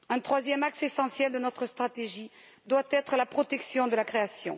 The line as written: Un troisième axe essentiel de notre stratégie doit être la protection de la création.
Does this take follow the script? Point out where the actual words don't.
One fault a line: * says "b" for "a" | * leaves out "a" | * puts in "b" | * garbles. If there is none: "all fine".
all fine